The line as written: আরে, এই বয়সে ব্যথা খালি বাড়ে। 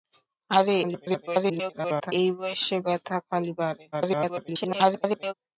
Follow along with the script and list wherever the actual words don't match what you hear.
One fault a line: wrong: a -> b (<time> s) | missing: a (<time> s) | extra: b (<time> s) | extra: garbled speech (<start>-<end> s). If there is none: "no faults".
extra: garbled speech (0.8-2.1 s)
extra: garbled speech (3.9-5.3 s)